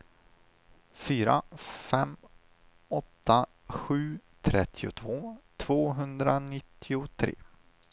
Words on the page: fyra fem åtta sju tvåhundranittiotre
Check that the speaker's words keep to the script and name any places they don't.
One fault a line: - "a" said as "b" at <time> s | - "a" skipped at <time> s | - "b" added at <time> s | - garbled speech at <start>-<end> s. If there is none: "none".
- "trettiotvå" added at 4.4 s